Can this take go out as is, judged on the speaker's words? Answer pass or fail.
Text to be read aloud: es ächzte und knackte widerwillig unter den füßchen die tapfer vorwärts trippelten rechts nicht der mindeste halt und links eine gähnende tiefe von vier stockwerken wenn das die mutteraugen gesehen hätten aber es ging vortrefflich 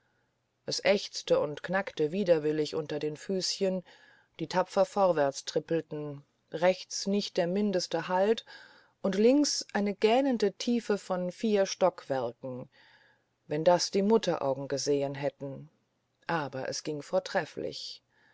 pass